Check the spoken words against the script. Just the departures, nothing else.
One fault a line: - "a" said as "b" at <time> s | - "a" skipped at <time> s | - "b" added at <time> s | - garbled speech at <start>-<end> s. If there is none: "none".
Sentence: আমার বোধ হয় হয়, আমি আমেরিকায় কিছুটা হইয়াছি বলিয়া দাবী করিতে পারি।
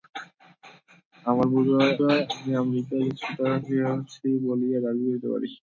none